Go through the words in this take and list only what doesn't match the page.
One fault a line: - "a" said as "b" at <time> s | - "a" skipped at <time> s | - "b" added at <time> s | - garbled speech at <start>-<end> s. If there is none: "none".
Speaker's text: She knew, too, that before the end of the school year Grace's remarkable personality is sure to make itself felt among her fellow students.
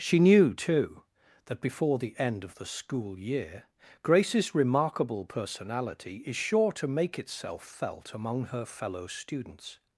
none